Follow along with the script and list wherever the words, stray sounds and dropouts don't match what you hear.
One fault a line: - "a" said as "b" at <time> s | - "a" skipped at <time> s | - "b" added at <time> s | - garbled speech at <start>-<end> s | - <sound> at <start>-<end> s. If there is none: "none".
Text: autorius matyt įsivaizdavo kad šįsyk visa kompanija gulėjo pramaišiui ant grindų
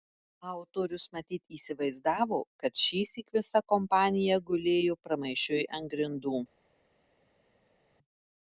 none